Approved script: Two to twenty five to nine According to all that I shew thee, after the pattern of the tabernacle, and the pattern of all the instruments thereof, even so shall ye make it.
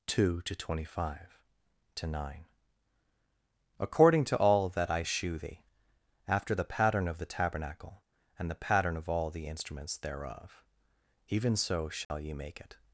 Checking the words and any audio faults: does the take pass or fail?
fail